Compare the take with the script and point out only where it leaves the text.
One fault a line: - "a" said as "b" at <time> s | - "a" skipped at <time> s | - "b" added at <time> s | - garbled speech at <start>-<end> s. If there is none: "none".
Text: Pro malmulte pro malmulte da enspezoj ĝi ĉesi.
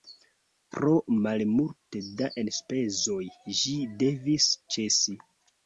- "pro malmulte" skipped at 2.0 s
- "devis" added at 4.1 s